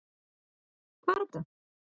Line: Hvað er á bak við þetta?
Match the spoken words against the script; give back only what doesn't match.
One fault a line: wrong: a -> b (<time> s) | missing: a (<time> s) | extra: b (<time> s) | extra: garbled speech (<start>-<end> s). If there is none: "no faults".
missing: bak við (1.3 s)